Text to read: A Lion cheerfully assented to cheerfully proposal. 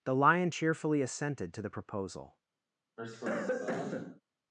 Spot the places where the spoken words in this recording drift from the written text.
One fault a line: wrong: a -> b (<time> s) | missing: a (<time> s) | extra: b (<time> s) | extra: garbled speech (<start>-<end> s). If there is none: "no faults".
wrong: A -> The (0.0 s)
wrong: cheerfully -> the (1.6 s)